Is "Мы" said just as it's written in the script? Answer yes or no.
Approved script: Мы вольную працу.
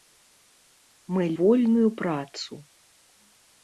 yes